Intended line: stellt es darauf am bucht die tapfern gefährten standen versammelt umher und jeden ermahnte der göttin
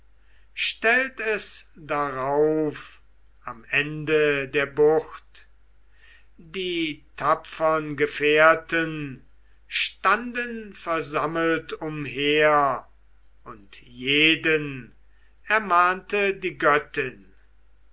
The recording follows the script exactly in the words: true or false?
false